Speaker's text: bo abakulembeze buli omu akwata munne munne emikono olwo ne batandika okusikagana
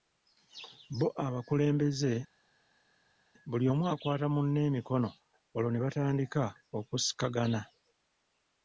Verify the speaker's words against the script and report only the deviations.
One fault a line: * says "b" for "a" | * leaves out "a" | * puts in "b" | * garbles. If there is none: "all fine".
* leaves out "munne"